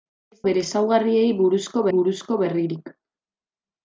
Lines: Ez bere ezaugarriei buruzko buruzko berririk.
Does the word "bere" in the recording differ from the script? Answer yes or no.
no